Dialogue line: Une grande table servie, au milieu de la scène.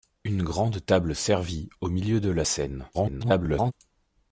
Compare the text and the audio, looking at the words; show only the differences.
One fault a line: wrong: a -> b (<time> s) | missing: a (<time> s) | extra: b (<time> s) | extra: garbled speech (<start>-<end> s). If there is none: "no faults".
extra: garbled speech (2.9-3.7 s)